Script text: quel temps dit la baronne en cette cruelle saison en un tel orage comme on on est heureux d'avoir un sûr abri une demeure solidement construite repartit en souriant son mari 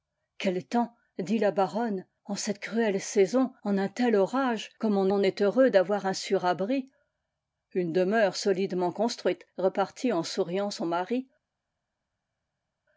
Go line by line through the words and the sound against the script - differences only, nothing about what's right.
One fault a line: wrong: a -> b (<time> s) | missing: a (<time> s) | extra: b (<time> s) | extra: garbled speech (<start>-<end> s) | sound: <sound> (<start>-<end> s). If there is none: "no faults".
no faults